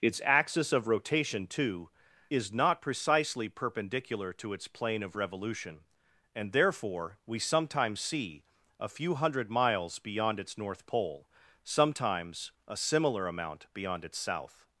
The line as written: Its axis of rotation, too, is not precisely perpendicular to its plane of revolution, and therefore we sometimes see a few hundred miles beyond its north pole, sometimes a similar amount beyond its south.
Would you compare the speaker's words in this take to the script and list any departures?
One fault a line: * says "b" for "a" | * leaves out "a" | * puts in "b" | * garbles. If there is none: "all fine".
all fine